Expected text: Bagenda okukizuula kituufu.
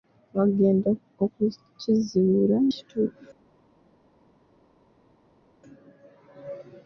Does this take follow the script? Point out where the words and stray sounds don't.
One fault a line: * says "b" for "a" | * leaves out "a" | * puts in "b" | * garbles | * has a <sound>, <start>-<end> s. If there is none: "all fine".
all fine